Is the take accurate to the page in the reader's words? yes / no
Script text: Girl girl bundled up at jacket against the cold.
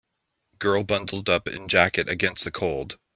no